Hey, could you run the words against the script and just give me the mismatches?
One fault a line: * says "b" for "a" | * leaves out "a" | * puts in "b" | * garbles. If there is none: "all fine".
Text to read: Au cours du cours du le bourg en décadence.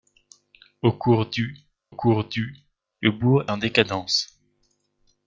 all fine